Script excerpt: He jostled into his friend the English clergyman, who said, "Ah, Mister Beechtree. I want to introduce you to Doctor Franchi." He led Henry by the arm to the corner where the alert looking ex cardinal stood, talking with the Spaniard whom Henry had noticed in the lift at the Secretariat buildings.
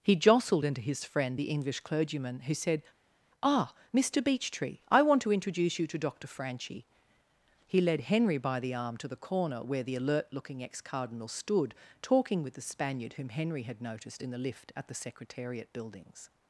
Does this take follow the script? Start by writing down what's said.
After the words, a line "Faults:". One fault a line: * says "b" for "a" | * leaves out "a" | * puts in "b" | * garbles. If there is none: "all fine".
He jostled into his friend the English clergyman, who said, "Ah, Mister Beechtree. I want to introduce you to Doctor Franchi." He led Henry by the arm to the corner where the alert looking ex cardinal stood, talking with the Spaniard whom Henry had noticed in the lift at the Secretariat buildings.
Faults:
all fine